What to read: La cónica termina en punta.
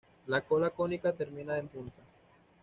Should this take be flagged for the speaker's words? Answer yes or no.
yes